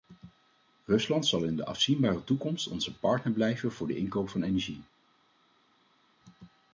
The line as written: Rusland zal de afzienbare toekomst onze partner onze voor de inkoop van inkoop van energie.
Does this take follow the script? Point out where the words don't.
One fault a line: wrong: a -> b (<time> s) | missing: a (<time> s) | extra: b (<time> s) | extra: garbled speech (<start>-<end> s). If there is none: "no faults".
extra: in (1.4 s)
wrong: onze -> blijven (3.3 s)
missing: inkoop van (4.4 s)